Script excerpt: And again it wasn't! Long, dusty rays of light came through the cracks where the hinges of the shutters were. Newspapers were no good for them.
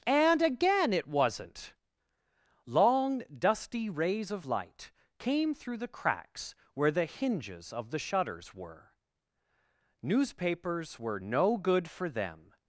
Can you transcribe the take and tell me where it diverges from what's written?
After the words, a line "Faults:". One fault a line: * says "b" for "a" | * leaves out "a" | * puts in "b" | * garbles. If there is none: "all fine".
And again it wasn't! Long, dusty rays of light came through the cracks where the hinges of the shutters were. Newspapers were no good for them.
Faults:
all fine